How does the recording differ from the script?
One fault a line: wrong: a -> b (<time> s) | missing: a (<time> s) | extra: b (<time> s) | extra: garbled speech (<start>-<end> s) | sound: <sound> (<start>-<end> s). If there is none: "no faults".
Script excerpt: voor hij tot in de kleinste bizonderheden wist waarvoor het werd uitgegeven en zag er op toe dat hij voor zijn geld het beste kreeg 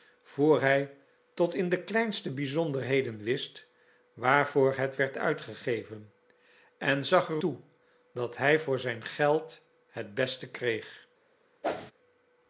missing: op (7.4 s)
sound: whoosh (11.6-11.9 s)